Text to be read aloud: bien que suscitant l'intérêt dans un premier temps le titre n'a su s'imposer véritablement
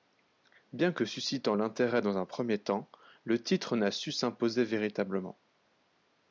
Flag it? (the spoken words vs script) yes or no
no